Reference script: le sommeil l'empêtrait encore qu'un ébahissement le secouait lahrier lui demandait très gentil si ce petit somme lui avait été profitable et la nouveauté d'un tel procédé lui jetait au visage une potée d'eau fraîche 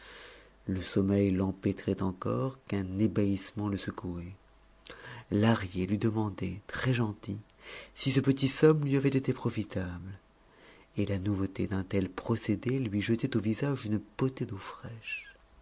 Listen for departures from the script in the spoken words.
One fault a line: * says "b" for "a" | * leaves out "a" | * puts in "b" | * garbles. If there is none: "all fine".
all fine